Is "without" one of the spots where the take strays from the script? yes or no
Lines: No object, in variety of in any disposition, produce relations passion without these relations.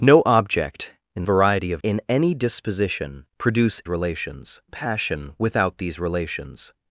no